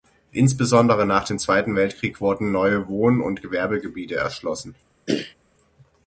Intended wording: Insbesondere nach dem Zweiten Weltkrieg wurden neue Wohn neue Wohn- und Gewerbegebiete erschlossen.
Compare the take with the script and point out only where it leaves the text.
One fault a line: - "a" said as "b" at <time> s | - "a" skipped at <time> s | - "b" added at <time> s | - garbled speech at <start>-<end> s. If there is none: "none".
- "neue Wohn" skipped at 3.2 s